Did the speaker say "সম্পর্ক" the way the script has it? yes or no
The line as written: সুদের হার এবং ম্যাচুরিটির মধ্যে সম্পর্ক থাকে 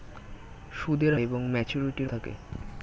no